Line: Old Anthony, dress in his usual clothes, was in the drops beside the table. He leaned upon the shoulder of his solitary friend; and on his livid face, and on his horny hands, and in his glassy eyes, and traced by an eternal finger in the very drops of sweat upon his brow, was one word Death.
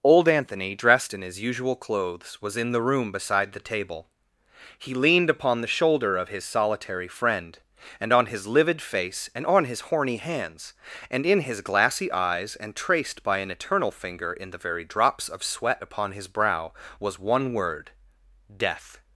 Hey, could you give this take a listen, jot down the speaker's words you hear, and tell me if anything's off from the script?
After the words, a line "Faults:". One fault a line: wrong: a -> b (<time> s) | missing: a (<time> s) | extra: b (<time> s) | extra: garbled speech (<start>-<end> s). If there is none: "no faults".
Old Anthony, dressed in his usual clothes, was in the room beside the table. He leaned upon the shoulder of his solitary friend; and on his livid face, and on his horny hands, and in his glassy eyes, and traced by an eternal finger in the very drops of sweat upon his brow, was one word Death.
Faults:
wrong: dress -> dressed (0.7 s)
wrong: drops -> room (2.8 s)